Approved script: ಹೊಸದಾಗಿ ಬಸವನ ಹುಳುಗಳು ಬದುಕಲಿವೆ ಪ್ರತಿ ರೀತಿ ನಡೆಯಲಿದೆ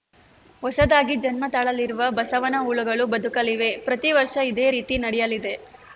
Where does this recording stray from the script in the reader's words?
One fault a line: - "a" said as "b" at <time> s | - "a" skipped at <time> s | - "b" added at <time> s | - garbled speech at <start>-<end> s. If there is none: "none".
- "ಜನ್ಮ ತಾಳಲಿರುವ" added at 1.2 s
- "ವರ್ಷ ಇದೇ" added at 4.1 s